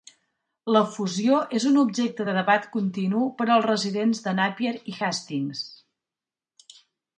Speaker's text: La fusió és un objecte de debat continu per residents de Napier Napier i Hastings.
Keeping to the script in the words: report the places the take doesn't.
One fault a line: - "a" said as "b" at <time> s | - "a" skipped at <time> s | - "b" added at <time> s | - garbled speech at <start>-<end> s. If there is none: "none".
- "als" added at 3.6 s
- "Napier" skipped at 4.8 s